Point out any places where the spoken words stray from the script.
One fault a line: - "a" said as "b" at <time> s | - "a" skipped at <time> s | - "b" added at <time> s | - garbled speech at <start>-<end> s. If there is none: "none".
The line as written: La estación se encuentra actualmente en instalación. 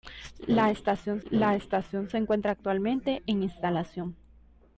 - "la estación" added at 1.3 s